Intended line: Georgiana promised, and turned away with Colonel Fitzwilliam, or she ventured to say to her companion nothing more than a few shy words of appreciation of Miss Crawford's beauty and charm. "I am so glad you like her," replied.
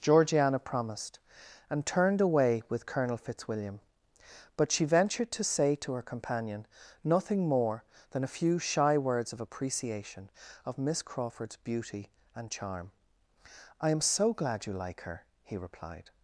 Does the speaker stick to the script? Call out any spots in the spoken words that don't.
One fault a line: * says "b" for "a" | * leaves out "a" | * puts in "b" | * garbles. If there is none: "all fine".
* says "but" for "or"
* puts in "he"